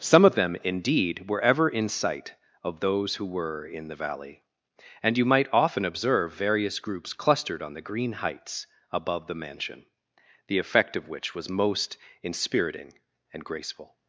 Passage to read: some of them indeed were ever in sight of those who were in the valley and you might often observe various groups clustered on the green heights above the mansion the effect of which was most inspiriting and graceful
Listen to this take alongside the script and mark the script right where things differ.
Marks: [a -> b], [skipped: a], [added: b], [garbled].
some of them indeed were ever in sight of those who were in the valley and you might often observe various groups clustered on the green heights above the mansion the effect of which was most inspiriting and graceful